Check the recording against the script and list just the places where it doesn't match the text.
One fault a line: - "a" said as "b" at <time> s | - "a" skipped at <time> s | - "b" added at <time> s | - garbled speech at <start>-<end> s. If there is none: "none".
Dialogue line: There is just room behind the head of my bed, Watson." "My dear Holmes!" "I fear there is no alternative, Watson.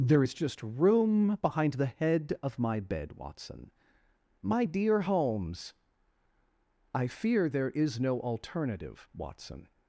none